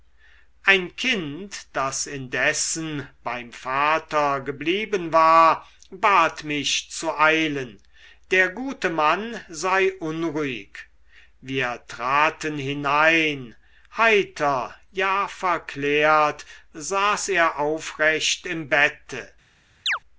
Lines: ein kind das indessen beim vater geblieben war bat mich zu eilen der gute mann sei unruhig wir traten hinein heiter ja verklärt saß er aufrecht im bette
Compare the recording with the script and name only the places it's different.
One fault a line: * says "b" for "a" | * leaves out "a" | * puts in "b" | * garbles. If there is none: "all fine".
all fine